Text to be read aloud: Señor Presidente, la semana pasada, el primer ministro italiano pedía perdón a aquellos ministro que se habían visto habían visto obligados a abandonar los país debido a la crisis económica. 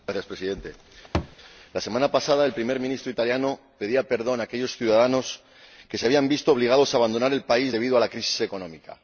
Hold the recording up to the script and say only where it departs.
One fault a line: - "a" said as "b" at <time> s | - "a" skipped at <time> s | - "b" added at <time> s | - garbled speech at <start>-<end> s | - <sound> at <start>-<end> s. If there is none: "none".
- thud at 1.1-1.4 s
- "ministro" said as "ciudadanos" at 4.8 s
- "habían visto" skipped at 6.5 s
- "los" said as "el" at 7.3 s